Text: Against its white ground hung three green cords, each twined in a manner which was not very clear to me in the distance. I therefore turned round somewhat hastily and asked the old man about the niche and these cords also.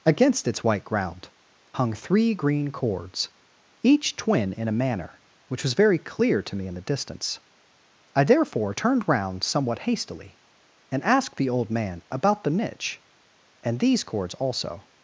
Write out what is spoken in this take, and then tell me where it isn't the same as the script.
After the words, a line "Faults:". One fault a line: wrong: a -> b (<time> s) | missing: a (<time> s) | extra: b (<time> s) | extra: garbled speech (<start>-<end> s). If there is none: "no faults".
Against its white ground hung three green cords, each twin in a manner which was very clear to me in the distance. I therefore turned round somewhat hastily and asked the old man about the niche and these cords also.
Faults:
wrong: twined -> twin (4.2 s)
missing: not (5.7 s)